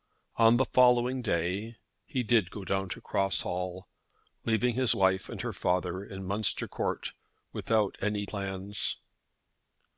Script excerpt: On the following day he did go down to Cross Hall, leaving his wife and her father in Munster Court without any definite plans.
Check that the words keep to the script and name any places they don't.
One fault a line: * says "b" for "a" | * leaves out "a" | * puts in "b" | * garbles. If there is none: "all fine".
* leaves out "definite"